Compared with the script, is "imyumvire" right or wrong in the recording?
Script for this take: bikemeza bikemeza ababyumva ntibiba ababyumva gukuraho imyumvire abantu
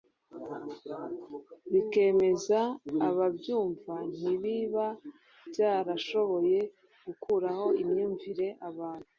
right